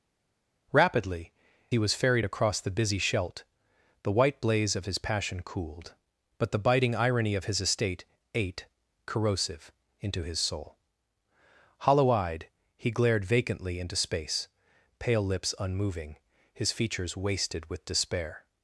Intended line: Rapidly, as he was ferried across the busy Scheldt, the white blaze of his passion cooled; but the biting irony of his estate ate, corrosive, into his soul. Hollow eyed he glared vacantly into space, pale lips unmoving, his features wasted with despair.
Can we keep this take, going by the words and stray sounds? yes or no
no